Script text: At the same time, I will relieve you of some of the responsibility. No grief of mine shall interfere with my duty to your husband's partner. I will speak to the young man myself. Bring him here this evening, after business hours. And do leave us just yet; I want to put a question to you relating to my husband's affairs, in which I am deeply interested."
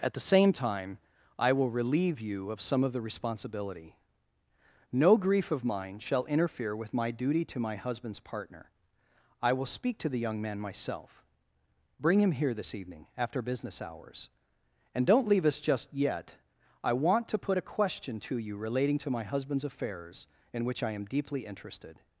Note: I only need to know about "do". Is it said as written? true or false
false